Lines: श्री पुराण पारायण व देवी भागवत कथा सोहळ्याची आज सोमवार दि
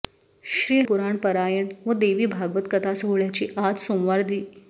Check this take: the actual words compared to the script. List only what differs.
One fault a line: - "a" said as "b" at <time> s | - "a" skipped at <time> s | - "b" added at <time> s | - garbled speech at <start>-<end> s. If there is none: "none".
none